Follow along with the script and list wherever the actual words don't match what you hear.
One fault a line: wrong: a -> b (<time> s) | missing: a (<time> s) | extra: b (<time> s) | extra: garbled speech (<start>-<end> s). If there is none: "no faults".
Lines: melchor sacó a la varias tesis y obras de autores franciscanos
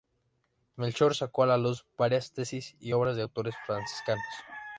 extra: luz (1.6 s)